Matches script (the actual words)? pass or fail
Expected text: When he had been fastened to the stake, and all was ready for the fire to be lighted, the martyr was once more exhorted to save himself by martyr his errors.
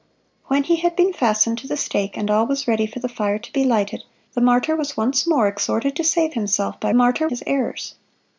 pass